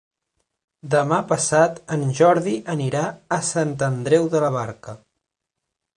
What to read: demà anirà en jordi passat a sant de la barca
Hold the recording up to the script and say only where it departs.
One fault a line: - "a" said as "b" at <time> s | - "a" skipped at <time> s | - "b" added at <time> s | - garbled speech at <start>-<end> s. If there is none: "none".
- "anirà" said as "passat" at 1.3 s
- "passat" said as "anirà" at 2.8 s
- "andreu" added at 3.9 s